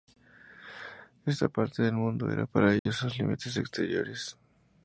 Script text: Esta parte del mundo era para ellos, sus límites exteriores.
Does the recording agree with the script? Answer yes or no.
yes